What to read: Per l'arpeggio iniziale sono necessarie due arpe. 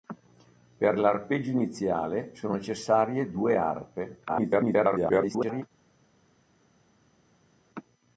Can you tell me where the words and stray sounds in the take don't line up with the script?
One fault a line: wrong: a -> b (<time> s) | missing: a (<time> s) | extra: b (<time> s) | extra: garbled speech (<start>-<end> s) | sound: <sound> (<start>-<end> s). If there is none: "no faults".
extra: garbled speech (4.3-5.6 s)